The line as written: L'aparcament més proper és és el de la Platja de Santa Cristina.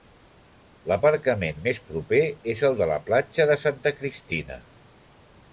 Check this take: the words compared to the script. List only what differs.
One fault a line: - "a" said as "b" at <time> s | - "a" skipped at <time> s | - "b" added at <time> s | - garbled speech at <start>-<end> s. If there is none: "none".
- "és" skipped at 2.6 s